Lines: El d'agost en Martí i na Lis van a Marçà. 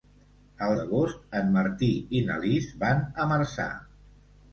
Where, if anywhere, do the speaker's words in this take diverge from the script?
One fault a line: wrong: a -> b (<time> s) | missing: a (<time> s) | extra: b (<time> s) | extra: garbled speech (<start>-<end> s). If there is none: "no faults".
no faults